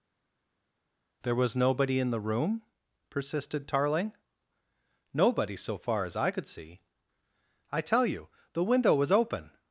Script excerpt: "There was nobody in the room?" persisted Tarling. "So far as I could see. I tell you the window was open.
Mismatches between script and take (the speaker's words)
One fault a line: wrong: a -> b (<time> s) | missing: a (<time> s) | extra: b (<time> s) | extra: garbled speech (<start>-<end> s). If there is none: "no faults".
extra: Nobody (5.1 s)